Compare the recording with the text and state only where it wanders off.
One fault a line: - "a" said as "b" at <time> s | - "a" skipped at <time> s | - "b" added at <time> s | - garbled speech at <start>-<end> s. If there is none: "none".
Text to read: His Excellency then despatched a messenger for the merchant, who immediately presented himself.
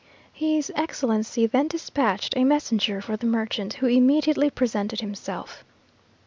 none